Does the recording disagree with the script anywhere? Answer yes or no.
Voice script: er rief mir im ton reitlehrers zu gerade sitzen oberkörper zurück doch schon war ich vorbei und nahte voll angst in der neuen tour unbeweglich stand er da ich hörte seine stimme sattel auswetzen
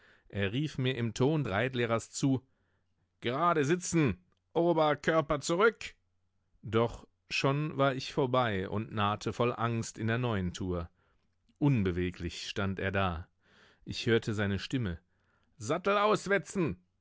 no